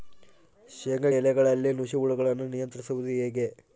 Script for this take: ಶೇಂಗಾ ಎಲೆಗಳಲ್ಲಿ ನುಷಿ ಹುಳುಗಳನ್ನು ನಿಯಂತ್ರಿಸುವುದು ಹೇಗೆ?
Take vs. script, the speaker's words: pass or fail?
pass